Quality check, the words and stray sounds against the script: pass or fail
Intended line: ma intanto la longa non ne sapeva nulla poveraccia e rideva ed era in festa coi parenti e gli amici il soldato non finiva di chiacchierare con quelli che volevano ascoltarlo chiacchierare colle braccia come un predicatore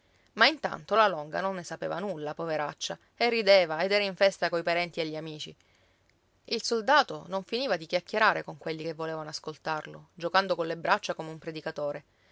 fail